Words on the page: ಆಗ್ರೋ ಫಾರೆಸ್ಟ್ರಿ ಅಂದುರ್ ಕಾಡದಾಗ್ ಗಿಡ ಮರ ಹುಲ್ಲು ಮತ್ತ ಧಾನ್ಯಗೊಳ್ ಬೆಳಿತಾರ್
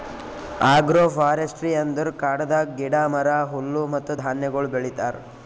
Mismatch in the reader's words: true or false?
false